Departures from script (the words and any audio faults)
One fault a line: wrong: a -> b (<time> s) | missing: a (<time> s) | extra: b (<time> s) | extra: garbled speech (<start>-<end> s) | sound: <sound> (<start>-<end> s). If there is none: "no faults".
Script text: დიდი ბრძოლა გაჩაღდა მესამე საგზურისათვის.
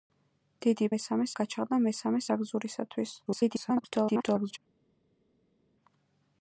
wrong: ბრძოლა -> მესამე (0.9 s)
extra: garbled speech (3.3-4.6 s)